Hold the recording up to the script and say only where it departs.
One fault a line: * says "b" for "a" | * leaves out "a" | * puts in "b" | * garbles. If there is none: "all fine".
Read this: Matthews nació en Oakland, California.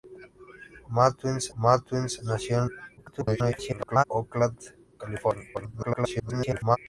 * puts in "matthews"
* garbles
* garbles